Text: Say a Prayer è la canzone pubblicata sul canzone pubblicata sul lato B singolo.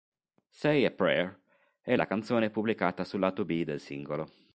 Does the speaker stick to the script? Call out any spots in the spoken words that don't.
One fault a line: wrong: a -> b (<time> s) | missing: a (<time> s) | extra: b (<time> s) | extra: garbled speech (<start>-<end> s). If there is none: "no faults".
missing: canzone pubblicata sul (3.2 s)
extra: del (3.6 s)